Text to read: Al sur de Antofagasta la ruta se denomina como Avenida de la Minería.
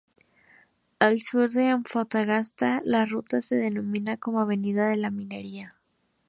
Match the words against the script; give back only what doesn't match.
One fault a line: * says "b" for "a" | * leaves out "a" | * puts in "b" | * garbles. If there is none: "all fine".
all fine